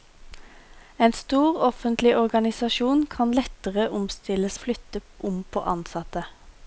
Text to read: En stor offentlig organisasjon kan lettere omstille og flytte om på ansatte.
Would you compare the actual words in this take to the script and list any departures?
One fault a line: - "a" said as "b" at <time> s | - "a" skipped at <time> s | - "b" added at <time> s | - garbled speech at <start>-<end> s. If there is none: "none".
none